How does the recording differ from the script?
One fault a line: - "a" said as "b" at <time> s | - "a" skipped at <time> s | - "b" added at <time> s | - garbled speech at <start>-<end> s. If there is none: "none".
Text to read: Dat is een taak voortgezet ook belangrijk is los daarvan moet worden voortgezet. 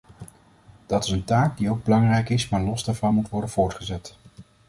- "voortgezet" said as "die" at 1.6 s
- "maar" added at 2.5 s